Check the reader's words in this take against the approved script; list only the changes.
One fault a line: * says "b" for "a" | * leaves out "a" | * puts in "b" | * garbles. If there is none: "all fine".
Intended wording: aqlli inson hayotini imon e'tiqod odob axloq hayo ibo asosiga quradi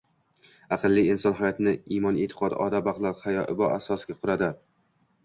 all fine